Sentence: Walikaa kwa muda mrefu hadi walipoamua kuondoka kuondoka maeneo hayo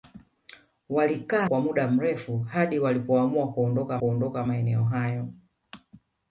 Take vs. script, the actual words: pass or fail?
pass